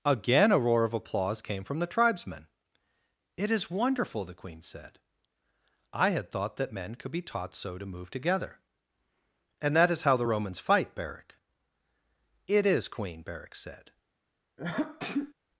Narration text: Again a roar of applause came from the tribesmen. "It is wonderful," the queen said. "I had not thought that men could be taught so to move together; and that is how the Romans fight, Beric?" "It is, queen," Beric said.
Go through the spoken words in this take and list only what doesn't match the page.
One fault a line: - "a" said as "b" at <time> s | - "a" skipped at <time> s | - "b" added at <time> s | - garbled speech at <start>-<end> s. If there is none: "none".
- "not" skipped at 6.3 s